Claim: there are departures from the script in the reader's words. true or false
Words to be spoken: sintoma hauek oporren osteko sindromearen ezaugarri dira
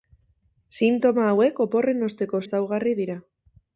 true